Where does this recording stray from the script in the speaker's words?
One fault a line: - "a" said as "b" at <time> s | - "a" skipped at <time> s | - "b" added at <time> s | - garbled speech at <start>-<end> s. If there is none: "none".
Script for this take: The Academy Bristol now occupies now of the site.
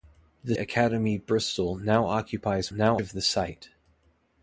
none